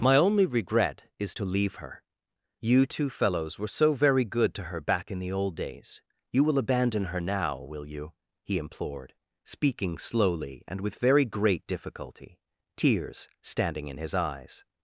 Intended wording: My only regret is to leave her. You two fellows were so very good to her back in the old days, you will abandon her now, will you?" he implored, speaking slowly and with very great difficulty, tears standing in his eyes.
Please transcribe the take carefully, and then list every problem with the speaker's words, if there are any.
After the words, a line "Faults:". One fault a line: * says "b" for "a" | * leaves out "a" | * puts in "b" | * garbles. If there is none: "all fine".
My only regret is to leave her. You two fellows were so very good to her back in the old days, you will abandon her now, will you?" he implored, speaking slowly and with very great difficulty, tears standing in his eyes.
Faults:
all fine